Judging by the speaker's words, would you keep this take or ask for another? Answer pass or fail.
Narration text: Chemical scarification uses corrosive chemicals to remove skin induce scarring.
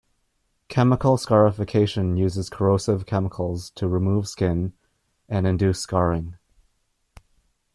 fail